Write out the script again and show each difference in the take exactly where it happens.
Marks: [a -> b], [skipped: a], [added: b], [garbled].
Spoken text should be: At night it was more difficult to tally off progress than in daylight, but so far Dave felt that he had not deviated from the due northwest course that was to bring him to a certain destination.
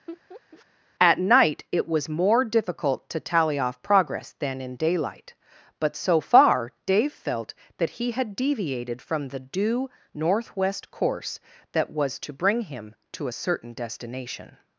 At night it was more difficult to tally off progress than in daylight, but so far Dave felt that he had [skipped: not] deviated from the due northwest course that was to bring him to a certain destination.